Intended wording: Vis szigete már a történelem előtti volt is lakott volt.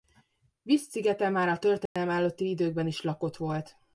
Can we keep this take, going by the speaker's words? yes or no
no